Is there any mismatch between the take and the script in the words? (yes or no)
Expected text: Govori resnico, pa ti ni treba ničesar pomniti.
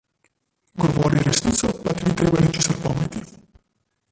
no